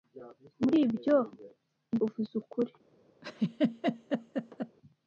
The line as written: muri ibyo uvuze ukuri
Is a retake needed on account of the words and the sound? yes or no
yes